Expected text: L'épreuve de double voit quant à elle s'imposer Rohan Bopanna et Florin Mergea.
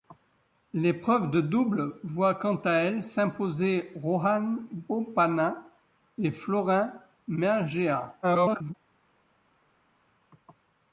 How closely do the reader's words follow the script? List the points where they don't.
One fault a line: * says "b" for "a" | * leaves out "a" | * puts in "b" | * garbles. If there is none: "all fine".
* garbles